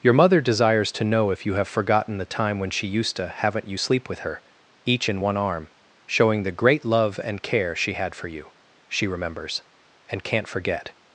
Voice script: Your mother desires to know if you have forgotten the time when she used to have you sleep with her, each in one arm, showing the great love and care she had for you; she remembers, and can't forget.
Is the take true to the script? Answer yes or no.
no